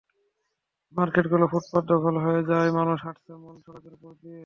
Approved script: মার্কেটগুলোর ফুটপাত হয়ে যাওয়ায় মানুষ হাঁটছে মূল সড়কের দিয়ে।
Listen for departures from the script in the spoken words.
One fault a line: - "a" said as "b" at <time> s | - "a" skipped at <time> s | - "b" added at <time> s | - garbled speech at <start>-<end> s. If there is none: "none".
- "দখল" added at 1.8 s
- "ওপর" added at 3.9 s